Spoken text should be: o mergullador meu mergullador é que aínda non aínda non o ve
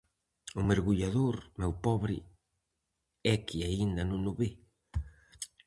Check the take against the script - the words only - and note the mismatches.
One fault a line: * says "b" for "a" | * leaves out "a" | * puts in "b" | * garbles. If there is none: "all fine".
* says "pobre" for "mergullador"
* leaves out "aínda non"